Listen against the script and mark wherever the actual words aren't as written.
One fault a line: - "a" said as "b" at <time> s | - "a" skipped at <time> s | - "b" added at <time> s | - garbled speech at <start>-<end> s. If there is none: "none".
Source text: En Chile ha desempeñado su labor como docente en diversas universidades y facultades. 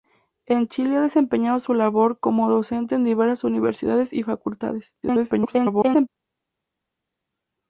- garbled speech at 5.0-6.1 s